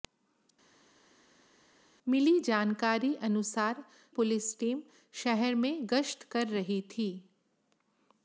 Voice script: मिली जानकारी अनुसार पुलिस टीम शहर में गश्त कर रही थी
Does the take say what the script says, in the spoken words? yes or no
yes